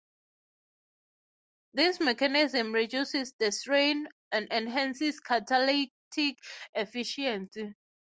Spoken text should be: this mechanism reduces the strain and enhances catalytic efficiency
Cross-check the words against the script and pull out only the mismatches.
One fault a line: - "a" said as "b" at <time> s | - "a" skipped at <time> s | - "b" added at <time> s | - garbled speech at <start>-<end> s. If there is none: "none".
none